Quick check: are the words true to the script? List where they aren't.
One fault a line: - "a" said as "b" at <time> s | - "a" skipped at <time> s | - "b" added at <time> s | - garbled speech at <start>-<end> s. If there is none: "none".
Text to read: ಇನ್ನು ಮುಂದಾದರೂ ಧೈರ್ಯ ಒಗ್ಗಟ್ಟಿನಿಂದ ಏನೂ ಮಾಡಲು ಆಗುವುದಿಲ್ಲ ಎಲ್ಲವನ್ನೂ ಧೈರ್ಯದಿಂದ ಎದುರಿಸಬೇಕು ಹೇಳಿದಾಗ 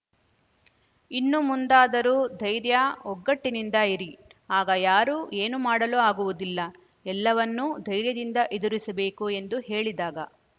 - "ಇರಿ ಆಗ ಯಾರೂ" added at 3.9 s
- "ಎಂದು" added at 9.4 s